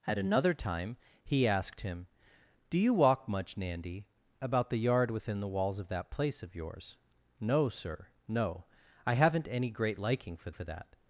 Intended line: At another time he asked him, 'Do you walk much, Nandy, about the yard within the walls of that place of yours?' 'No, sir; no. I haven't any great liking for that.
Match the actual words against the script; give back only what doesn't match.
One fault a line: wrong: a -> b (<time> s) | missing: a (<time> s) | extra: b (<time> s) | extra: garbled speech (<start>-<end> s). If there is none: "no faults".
extra: for (10.5 s)